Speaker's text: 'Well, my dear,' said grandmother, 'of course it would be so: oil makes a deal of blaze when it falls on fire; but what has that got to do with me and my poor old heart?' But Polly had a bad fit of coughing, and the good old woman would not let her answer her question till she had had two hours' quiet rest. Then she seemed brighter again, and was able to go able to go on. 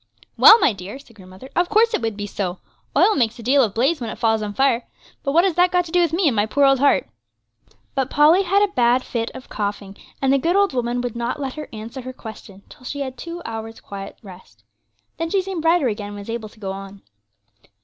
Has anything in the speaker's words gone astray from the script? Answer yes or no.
yes